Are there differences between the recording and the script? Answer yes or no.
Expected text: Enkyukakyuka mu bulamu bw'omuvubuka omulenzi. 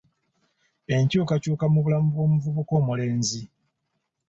no